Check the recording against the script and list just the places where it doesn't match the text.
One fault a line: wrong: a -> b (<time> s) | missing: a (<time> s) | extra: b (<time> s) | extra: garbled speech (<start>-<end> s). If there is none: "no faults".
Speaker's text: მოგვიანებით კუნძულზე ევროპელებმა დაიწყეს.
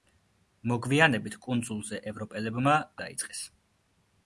no faults